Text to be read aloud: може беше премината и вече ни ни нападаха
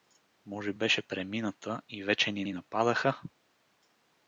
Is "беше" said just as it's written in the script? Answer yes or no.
yes